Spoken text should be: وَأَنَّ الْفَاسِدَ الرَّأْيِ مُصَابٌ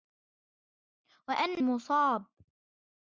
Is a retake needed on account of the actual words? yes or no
yes